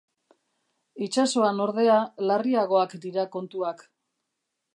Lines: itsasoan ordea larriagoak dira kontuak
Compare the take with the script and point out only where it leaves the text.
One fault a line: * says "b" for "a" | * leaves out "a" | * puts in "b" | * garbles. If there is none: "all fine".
all fine